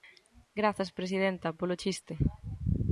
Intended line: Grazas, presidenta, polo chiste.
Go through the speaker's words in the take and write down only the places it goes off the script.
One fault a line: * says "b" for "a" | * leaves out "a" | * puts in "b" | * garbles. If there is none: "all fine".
all fine